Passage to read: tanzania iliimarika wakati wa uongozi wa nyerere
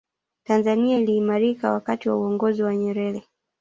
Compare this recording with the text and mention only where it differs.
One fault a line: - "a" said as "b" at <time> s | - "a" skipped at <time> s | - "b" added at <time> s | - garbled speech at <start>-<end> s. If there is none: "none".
none